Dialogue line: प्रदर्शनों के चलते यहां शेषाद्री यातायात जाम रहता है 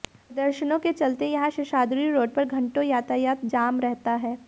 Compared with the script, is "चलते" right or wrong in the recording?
right